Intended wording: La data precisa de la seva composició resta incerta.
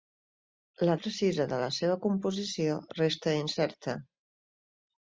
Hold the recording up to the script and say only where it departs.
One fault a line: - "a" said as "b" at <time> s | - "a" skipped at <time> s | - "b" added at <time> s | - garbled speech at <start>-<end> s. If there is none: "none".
- "data" skipped at 0.9 s